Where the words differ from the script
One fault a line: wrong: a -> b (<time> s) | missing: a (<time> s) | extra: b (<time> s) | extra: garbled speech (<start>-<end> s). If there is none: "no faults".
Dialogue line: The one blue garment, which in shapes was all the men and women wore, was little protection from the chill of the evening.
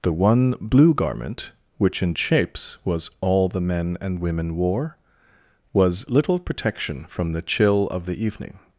no faults